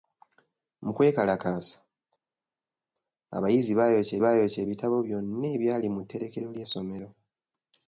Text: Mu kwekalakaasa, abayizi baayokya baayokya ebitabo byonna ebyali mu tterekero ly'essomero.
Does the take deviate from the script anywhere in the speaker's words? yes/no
no